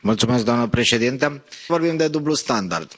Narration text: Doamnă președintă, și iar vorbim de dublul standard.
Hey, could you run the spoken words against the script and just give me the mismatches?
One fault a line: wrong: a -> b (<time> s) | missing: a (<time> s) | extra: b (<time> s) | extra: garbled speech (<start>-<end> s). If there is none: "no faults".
missing: și iar (1.4 s)